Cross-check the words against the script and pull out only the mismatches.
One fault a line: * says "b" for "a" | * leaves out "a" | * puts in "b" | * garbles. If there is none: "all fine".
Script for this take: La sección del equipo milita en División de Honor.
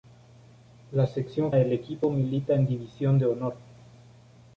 all fine